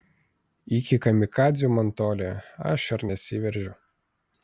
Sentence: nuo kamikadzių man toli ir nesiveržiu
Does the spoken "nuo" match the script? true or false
false